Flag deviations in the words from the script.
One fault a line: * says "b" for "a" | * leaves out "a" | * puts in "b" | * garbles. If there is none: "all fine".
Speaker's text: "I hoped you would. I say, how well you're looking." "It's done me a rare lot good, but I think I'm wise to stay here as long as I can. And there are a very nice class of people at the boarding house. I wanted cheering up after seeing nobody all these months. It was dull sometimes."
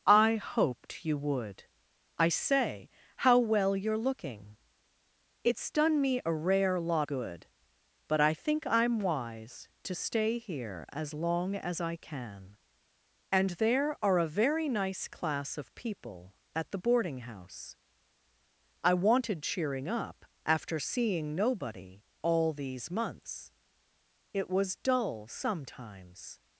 all fine